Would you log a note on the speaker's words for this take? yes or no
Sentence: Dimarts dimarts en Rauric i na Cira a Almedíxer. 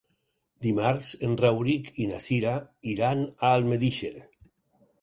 yes